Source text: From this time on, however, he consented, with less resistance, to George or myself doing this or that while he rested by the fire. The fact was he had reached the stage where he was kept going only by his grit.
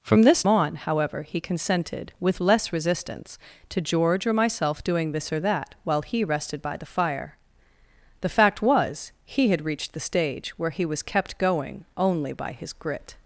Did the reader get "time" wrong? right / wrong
wrong